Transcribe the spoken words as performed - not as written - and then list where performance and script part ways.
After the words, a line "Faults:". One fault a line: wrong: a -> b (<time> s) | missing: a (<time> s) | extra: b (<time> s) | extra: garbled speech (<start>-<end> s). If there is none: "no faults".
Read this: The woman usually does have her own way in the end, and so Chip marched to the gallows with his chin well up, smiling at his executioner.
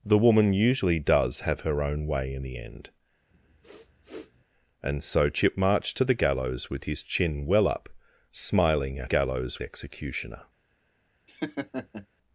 The woman usually does have her own way in the end, and so Chip marched to the gallows with his chin well up, smiling at gallows executioner.
Faults:
wrong: his -> gallows (9.0 s)